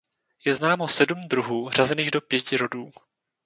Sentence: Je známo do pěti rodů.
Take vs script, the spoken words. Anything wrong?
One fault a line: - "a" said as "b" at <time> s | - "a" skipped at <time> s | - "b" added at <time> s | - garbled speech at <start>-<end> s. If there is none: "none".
- "sedm druhů řazených" added at 0.9 s